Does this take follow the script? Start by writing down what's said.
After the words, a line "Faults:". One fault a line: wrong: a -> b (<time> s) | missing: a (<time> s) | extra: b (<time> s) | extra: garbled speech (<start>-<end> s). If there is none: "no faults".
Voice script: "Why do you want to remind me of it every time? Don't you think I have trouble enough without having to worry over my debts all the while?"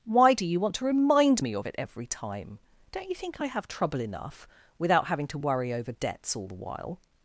"Why do you want to remind me of it every time? Don't you think I have trouble enough without having to worry over debts all the while?"
Faults:
missing: my (5.9 s)